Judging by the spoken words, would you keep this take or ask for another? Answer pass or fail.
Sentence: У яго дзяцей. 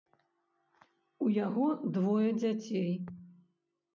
fail